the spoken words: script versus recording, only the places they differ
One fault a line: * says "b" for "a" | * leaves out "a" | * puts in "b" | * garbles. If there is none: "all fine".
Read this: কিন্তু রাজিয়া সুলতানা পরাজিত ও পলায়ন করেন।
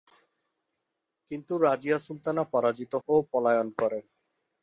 all fine